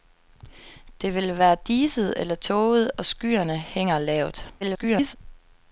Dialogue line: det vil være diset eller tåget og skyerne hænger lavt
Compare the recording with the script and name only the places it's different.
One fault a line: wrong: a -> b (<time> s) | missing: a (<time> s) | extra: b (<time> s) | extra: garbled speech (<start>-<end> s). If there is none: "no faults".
extra: garbled speech (4.6-5.2 s)